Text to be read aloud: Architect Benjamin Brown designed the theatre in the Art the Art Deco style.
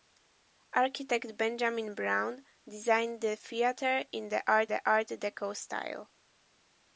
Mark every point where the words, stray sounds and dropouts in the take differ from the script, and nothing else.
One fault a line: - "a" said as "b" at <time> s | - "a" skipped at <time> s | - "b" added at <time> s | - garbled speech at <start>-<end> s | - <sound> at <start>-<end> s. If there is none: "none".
none